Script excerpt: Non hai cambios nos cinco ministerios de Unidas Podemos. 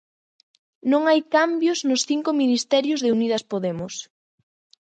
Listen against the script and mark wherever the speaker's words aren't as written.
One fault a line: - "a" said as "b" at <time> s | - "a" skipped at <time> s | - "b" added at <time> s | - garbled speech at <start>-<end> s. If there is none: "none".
none